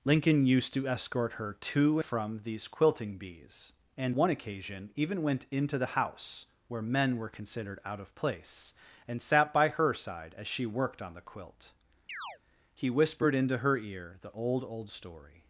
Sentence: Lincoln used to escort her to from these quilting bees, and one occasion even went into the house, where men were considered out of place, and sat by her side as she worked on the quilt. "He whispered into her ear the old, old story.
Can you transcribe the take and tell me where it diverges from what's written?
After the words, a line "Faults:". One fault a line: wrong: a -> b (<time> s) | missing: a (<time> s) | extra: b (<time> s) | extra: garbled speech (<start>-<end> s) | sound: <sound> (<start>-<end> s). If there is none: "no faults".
Lincoln used to escort her to from these quilting bees, and one occasion even went into the house, where men were considered out of place, and sat by her side as she worked on the quilt. "He whispered into her ear the old, old story.
Faults:
sound: chirp (12.1-12.4 s)